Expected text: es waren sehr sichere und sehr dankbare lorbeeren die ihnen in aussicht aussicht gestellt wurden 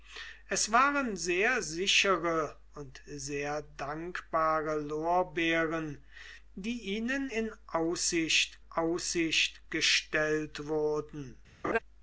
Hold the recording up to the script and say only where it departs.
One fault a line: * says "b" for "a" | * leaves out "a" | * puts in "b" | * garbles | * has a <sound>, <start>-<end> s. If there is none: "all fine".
* has a laugh, 11.6-11.8 s